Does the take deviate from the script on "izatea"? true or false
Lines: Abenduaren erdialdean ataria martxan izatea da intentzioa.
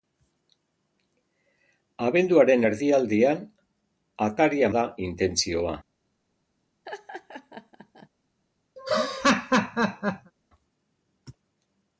true